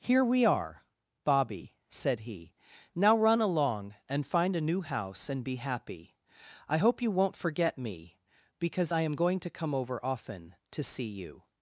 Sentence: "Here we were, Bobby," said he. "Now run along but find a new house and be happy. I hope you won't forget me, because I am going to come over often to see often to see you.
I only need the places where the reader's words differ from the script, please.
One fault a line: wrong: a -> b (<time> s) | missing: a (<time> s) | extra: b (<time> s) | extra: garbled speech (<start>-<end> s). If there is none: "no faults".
wrong: were -> are (0.5 s)
wrong: but -> and (4.1 s)
missing: often to see (11.1 s)